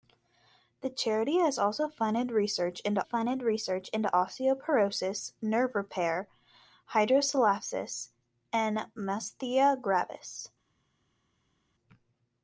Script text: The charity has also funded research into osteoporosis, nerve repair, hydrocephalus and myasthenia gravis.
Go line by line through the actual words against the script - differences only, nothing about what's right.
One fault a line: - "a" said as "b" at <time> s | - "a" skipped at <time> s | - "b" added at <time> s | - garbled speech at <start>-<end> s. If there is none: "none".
- "funded research into" added at 3.0 s